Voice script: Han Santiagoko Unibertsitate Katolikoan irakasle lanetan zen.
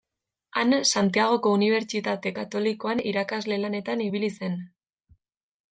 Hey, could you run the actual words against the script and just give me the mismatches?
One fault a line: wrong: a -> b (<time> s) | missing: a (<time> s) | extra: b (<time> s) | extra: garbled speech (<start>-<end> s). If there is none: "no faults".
extra: ibili (4.1 s)